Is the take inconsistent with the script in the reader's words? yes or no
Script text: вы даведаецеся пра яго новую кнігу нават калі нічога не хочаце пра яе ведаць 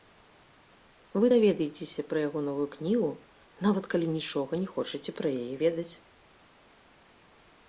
no